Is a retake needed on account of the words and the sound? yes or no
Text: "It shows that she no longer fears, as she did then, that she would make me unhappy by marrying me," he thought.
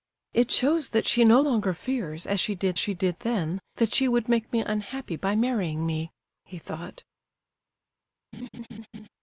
yes